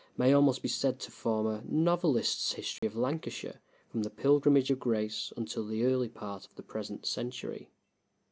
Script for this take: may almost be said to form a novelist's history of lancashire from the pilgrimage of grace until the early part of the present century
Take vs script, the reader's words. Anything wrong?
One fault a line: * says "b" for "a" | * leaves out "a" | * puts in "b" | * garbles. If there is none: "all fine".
all fine